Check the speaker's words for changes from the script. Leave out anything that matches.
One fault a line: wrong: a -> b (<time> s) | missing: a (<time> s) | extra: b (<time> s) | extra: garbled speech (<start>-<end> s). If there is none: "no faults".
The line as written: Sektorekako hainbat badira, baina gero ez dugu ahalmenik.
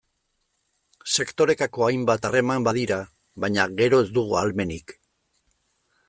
extra: harreman (2.3 s)